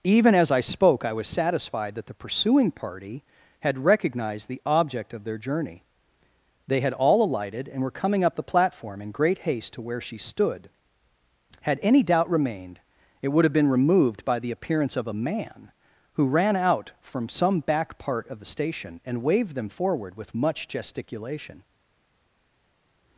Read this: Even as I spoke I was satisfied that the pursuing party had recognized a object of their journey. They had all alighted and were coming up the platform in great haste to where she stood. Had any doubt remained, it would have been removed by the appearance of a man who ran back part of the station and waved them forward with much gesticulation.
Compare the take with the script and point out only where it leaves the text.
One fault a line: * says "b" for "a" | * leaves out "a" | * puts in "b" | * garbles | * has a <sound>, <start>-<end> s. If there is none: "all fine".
* says "the" for "a"
* puts in "out from some"